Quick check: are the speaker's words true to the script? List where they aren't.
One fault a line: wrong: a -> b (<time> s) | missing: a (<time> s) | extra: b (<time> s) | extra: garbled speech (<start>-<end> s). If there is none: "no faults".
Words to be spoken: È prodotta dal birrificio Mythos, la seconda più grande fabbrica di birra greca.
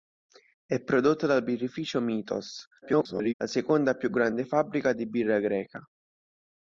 extra: garbled speech (2.8-3.3 s)